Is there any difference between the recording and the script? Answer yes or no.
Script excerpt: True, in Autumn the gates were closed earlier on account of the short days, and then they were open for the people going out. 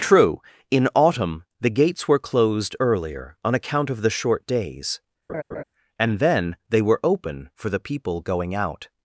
no